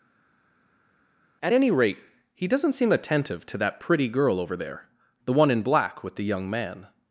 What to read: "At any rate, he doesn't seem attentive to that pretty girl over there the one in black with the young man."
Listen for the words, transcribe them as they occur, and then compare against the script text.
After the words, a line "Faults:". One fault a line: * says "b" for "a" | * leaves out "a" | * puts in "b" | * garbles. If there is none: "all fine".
"At any rate, he doesn't seem attentive to that pretty girl over there the one in black with the young man."
Faults:
all fine